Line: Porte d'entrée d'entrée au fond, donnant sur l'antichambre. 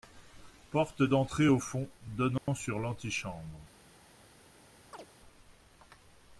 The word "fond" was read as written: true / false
true